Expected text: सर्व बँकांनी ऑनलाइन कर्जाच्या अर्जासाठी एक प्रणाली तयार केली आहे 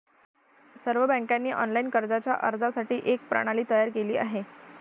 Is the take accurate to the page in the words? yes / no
yes